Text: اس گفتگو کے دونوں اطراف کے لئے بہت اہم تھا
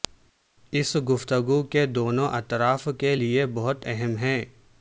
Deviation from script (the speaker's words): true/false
true